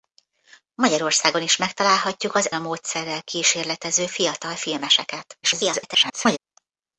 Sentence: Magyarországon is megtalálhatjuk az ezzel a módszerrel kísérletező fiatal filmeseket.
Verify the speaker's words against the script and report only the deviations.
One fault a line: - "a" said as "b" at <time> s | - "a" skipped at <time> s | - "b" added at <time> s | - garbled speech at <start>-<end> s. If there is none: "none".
- "ezzel" skipped at 2.5 s
- garbled speech at 5.4-6.4 s